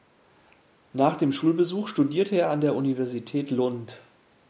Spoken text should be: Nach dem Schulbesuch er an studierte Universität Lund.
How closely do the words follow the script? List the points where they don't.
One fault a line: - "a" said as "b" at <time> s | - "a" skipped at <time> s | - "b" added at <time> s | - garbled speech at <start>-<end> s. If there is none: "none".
- "studierte" added at 1.9 s
- "studierte" said as "der" at 2.6 s